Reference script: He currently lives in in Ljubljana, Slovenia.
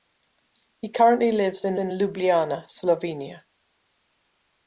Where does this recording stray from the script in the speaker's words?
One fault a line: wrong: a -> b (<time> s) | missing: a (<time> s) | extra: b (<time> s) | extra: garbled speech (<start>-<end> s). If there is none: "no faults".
no faults